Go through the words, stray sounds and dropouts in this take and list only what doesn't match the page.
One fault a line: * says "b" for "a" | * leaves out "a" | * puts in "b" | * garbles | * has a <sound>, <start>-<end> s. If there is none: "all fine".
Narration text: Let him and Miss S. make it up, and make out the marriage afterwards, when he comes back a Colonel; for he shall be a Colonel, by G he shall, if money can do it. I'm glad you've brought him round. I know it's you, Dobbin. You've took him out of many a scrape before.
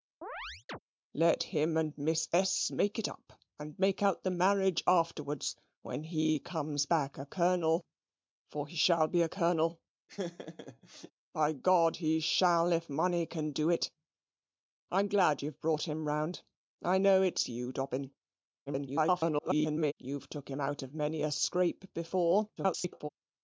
* has a chirp, 0.2-0.8 s
* has a laugh, 10.1-11.1 s
* garbles
* garbles